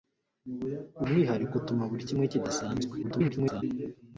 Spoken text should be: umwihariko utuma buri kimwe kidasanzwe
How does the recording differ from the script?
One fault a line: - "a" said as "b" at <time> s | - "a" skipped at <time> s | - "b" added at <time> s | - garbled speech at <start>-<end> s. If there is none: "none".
- garbled speech at 3.0-3.6 s